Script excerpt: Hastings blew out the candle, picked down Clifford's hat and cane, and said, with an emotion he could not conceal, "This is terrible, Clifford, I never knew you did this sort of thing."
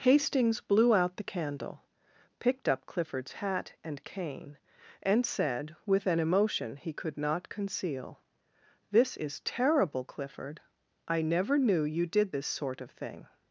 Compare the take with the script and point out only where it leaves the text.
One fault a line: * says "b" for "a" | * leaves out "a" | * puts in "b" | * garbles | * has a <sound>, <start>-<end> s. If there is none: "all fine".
* says "up" for "down"